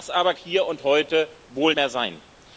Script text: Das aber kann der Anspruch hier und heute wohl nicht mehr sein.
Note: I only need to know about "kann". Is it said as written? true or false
false